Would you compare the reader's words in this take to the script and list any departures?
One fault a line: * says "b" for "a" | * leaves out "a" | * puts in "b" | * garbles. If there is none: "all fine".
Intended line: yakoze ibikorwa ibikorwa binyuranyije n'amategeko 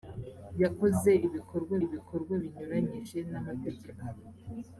all fine